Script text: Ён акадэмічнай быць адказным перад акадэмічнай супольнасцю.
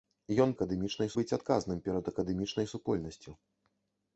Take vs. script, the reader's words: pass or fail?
pass